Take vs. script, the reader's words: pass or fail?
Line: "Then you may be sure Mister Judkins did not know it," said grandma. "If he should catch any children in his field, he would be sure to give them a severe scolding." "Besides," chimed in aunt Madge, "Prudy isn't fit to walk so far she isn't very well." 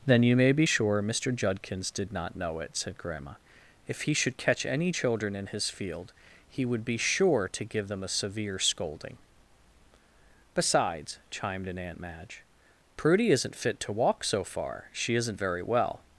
pass